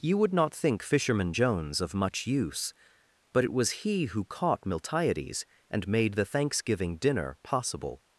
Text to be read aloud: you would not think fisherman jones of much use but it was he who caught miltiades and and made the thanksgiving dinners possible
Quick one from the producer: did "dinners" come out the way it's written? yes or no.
no